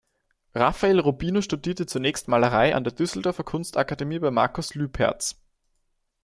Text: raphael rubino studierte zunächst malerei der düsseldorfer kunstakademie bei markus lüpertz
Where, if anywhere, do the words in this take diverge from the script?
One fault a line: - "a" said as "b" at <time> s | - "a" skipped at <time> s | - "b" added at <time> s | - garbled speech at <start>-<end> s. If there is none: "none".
- "an" added at 2.7 s